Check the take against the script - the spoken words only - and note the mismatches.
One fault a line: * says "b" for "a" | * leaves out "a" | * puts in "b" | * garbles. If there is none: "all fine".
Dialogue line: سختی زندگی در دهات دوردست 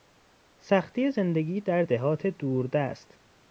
all fine